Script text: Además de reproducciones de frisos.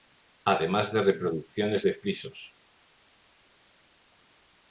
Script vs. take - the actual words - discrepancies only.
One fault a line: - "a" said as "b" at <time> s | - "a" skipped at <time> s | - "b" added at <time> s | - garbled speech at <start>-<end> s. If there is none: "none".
none